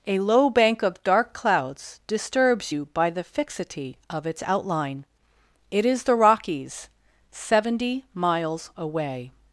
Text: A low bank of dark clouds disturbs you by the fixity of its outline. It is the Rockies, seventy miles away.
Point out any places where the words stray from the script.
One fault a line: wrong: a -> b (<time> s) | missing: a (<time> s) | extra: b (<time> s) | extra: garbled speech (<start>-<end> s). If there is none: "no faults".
no faults